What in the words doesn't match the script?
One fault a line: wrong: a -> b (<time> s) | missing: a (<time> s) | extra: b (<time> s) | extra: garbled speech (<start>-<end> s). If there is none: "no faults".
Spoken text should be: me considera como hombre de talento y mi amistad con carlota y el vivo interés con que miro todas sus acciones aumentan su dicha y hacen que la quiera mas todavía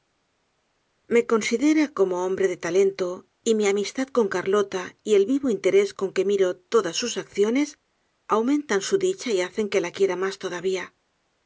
no faults